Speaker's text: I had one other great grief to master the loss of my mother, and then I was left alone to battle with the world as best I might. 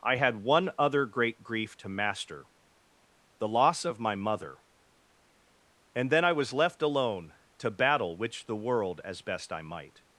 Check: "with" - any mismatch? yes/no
yes